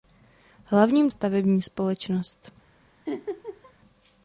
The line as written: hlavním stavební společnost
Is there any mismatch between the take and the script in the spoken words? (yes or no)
no